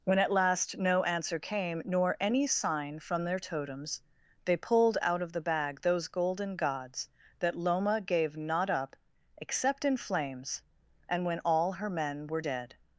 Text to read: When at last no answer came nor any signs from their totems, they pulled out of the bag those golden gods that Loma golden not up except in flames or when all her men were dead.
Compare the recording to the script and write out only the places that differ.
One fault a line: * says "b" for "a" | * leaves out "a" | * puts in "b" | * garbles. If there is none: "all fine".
* says "sign" for "signs"
* says "gave" for "golden"
* says "and" for "or"